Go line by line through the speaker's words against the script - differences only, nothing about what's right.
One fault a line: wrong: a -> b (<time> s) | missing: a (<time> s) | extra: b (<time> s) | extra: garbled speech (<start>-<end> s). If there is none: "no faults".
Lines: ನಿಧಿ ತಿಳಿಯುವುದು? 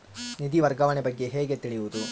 extra: ವರ್ಗಾವಣೆ ಬಗ್ಗೆ ಹೇಗೆ (0.6 s)